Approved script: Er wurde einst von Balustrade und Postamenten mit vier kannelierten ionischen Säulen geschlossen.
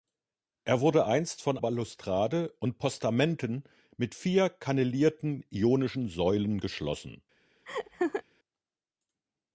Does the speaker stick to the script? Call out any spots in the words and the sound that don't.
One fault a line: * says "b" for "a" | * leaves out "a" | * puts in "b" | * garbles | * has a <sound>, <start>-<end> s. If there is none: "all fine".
* has a laugh, 7.7-8.2 s